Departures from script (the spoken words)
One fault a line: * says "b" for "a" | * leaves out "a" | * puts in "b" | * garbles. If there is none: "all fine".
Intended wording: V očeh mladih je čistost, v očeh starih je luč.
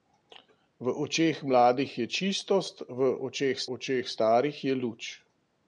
* puts in "očeh"